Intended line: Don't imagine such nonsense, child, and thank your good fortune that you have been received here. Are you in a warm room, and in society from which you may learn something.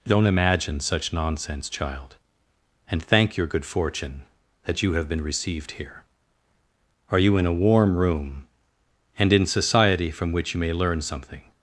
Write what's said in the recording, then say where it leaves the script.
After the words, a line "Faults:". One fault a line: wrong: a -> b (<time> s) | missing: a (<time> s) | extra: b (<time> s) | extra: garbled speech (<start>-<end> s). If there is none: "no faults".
Don't imagine such nonsense, child, and thank your good fortune that you have been received here. Are you in a warm room, and in society from which you may learn something.
Faults:
no faults